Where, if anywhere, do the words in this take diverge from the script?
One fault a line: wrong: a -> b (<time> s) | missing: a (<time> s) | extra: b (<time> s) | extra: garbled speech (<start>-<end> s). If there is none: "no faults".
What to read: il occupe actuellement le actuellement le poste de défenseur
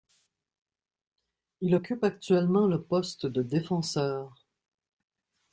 missing: actuellement le (2.8 s)